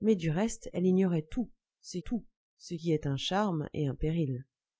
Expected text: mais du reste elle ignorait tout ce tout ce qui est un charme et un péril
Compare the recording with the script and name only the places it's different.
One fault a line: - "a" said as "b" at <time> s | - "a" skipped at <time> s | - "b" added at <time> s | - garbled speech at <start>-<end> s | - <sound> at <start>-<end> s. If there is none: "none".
none